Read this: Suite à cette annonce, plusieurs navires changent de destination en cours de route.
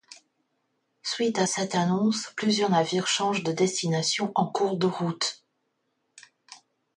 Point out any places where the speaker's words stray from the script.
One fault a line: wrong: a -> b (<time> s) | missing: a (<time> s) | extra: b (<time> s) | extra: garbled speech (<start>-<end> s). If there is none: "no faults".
no faults